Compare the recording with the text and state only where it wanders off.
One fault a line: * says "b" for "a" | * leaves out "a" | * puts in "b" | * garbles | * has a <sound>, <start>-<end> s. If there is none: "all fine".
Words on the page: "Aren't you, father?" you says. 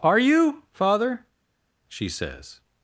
* says "Are" for "Aren't"
* says "she" for "you"